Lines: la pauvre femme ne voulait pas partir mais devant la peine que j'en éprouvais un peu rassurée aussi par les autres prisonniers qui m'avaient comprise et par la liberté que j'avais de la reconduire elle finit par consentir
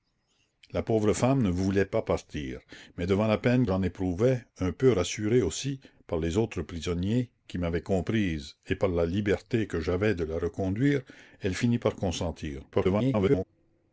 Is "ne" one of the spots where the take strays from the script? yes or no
no